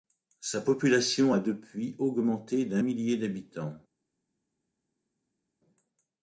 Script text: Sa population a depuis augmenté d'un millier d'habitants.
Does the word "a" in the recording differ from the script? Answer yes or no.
no